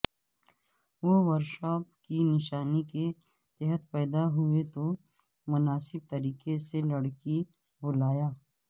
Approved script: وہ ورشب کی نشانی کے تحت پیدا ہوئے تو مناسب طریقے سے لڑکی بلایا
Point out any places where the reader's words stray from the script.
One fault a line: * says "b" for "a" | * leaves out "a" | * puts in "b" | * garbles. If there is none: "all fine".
all fine